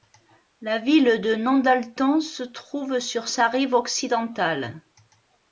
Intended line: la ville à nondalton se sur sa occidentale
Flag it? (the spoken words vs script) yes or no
yes